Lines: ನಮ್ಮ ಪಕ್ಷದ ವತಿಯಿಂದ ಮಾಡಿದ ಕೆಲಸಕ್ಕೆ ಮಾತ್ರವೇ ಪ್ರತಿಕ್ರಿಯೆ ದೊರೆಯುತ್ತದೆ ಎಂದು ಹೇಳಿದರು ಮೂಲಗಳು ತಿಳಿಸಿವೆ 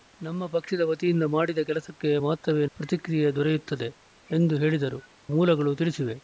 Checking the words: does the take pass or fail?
pass